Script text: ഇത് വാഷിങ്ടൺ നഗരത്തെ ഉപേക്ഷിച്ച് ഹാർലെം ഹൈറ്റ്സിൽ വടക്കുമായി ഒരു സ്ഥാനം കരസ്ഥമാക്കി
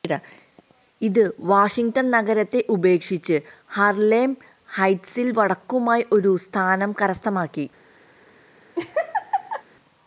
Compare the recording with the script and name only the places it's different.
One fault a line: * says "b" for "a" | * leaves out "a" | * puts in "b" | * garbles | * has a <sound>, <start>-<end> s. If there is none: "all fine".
* has a laugh, 8.7-9.6 s